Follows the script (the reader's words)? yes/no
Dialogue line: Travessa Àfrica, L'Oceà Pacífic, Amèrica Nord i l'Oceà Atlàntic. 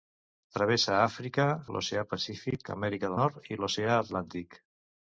yes